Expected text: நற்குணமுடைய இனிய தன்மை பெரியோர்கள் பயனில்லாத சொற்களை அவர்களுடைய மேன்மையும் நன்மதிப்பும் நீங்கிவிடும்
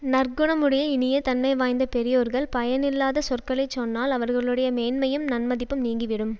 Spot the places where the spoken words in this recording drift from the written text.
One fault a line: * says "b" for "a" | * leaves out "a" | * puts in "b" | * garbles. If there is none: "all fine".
* puts in "வாய்ந்த"
* puts in "சொன்னால்"